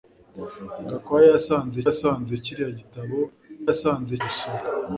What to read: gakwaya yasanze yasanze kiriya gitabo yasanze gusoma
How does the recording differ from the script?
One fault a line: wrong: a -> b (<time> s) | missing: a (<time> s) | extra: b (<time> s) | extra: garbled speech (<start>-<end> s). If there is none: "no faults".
no faults